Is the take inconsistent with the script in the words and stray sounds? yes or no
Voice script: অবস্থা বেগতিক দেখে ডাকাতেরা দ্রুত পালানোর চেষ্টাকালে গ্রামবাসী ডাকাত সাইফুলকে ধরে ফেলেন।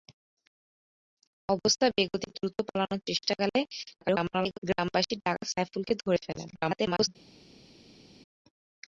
yes